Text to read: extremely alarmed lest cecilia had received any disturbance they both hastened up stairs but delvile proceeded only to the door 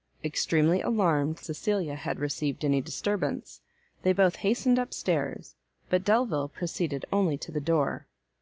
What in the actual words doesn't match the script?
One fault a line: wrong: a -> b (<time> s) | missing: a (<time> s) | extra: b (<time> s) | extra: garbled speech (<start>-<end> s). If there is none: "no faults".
missing: lest (1.4 s)